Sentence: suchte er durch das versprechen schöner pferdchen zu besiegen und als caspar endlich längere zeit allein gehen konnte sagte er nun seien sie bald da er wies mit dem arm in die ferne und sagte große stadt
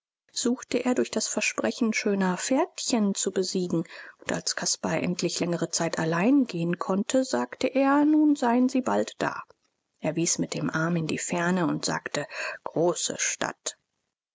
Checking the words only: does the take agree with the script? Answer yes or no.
yes